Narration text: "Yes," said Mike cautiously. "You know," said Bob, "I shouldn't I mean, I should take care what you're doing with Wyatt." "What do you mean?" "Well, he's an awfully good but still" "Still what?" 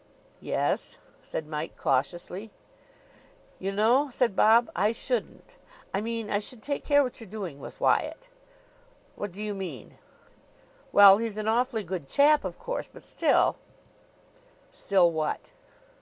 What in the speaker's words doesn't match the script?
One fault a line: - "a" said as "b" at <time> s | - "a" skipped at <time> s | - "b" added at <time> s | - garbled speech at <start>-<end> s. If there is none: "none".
- "chap of course" added at 12.1 s